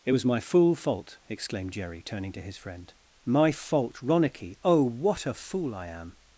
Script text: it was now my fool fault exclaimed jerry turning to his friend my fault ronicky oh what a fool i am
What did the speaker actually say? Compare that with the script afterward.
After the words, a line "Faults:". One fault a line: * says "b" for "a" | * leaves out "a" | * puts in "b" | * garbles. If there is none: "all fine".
it was my fool fault exclaimed jerry turning to his friend my fault ronicky oh what a fool i am
Faults:
* leaves out "now"